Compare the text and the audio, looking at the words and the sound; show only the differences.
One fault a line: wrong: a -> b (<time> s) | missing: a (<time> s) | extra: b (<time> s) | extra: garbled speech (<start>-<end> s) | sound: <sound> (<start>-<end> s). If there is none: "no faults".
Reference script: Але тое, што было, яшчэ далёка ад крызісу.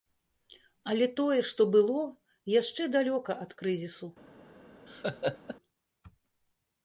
sound: laugh (4.9-5.6 s)